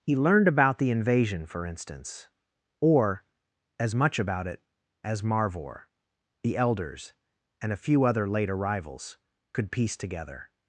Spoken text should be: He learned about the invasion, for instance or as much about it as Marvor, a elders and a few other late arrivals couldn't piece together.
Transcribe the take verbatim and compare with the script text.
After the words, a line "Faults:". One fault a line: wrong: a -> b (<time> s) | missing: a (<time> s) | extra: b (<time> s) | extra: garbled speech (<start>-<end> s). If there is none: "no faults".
He learned about the invasion, for instance or as much about it as Marvor, the elders and a few other late arrivals could piece together.
Faults:
wrong: a -> the (6.4 s)
wrong: couldn't -> could (9.5 s)